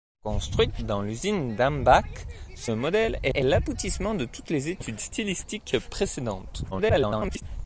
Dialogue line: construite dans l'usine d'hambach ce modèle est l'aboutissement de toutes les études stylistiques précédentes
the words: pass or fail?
fail